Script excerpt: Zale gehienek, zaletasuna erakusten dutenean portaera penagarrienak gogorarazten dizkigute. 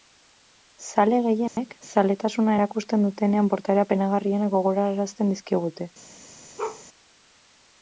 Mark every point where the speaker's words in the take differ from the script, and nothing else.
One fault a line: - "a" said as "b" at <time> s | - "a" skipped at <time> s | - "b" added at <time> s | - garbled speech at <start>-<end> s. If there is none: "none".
none